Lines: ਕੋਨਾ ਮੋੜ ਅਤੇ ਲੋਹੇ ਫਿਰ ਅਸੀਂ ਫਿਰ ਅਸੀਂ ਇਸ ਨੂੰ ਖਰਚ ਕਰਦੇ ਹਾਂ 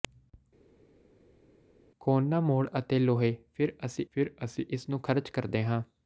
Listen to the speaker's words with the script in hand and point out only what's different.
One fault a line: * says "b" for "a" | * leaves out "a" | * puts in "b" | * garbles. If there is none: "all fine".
all fine